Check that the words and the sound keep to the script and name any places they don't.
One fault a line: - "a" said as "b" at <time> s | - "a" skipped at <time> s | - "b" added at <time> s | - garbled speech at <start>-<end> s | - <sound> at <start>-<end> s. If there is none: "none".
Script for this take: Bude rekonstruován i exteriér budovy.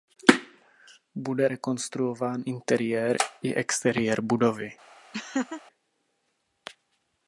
- "interiér" added at 2.4 s
- laugh at 5.1-5.6 s